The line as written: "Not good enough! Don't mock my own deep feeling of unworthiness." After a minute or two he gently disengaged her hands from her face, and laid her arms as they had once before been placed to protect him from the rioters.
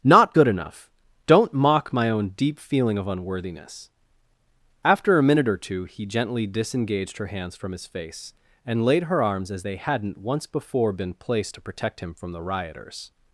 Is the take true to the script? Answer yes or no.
no